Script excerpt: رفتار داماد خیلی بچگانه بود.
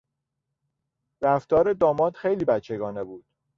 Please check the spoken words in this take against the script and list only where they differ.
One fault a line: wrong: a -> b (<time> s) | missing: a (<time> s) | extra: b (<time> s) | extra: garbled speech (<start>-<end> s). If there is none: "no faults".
no faults